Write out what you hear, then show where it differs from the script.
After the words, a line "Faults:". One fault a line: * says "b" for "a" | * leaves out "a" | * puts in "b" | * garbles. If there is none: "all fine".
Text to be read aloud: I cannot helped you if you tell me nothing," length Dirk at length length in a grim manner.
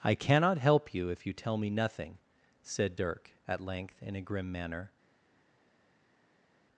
I cannot help you if you tell me nothing," said Dirk at length in a grim manner.
Faults:
* says "help" for "helped"
* says "said" for "length"
* leaves out "length"